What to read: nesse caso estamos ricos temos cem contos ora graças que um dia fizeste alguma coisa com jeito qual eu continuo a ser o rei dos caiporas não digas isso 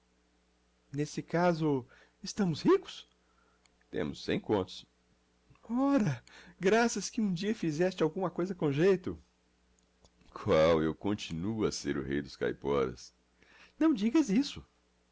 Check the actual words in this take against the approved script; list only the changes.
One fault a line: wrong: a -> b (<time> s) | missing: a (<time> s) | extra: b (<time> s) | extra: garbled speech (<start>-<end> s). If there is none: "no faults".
no faults